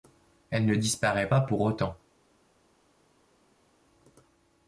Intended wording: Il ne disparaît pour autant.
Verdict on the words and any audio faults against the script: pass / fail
fail